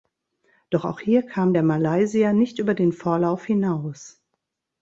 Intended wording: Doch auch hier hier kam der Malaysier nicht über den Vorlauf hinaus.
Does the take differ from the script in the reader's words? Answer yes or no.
yes